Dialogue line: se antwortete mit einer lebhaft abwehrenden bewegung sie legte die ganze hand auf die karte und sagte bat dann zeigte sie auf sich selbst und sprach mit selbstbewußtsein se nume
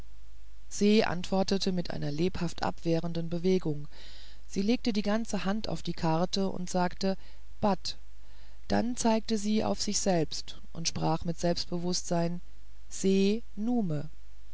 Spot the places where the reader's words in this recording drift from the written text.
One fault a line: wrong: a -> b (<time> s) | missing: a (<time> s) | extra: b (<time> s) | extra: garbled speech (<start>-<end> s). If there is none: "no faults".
no faults